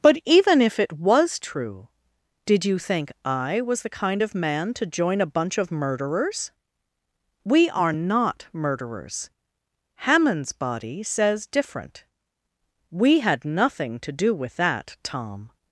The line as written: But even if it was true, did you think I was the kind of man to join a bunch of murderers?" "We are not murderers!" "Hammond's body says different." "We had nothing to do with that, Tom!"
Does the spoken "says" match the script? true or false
true